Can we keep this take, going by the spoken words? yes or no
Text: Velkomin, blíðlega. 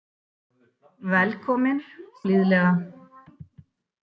yes